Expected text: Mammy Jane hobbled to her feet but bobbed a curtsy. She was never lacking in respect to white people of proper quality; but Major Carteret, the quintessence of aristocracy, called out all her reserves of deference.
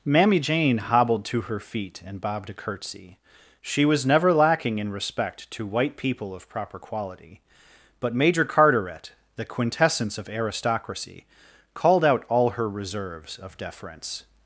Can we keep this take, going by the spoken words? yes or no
no